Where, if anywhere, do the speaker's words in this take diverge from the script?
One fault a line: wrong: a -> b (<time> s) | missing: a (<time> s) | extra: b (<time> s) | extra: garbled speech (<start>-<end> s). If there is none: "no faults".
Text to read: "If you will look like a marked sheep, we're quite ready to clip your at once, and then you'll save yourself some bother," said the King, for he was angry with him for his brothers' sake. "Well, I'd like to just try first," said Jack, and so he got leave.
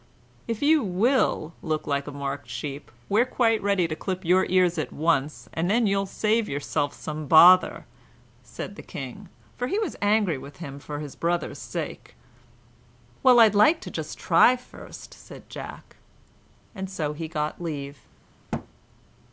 extra: ears (4.5 s)